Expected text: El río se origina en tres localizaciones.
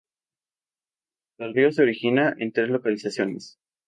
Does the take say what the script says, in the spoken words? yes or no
yes